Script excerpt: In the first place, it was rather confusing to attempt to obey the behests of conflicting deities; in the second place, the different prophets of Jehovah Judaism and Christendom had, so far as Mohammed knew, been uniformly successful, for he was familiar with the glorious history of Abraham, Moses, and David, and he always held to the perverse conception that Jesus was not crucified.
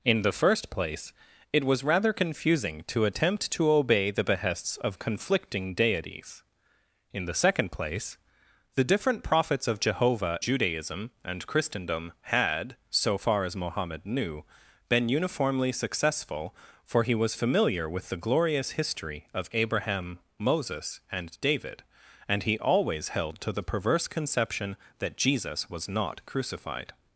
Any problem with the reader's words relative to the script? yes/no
no